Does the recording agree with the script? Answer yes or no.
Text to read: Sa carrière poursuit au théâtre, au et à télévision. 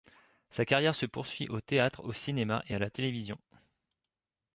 no